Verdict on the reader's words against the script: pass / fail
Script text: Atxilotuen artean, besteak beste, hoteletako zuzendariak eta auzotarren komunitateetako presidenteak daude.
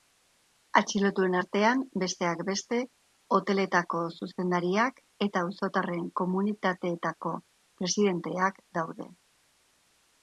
pass